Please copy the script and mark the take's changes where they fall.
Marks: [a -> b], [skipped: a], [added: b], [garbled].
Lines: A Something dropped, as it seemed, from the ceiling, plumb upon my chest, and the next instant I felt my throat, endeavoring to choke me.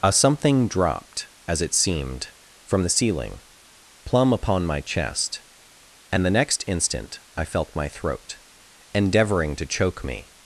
A Something dropped, as it seemed, from the ceiling, plumb upon my chest, and the next instant I felt my throat, endeavoring to choke me.